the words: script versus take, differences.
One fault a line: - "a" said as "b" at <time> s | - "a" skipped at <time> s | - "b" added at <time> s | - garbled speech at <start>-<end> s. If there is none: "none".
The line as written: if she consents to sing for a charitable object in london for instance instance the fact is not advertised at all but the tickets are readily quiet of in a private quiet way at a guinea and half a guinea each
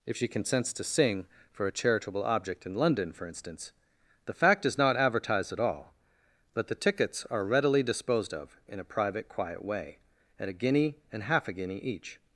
- "instance" skipped at 3.7 s
- "quiet" said as "disposed" at 7.8 s